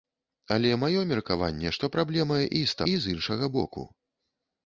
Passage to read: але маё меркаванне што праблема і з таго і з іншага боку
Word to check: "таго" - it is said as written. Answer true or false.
false